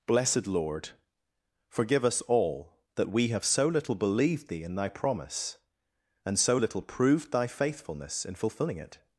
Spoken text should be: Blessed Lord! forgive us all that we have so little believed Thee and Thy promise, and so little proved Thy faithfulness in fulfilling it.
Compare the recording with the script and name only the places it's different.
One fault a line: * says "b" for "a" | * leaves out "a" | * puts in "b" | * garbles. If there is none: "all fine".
* says "in" for "and"